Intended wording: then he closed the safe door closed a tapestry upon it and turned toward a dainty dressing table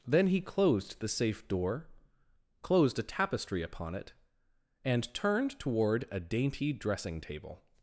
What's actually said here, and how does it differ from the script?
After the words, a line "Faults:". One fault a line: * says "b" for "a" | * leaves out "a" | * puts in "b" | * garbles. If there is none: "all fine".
then he closed the safe door closed a tapestry upon it and turned toward a dainty dressing table
Faults:
all fine